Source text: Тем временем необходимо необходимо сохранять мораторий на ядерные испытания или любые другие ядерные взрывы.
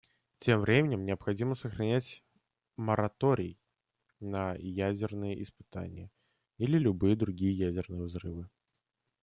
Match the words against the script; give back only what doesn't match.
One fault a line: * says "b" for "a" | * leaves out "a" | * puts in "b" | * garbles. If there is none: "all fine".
* leaves out "необходимо"